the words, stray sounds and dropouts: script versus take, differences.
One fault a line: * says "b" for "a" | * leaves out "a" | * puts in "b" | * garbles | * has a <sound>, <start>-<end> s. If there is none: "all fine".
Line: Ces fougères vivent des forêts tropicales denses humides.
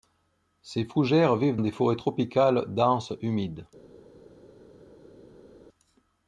all fine